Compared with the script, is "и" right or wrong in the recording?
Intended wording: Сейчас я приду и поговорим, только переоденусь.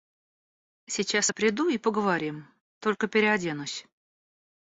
right